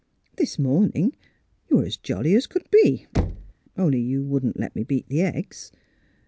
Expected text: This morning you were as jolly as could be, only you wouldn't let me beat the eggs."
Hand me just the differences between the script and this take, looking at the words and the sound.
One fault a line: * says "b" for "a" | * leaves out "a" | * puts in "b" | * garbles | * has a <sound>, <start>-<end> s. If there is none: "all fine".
* has a thud, 3.1-3.5 s